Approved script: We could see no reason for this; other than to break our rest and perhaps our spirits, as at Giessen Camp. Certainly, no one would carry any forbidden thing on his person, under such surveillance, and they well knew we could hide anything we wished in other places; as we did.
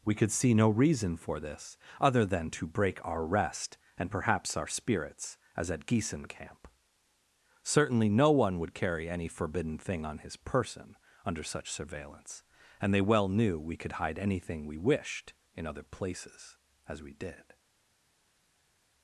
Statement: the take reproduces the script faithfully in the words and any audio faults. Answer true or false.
true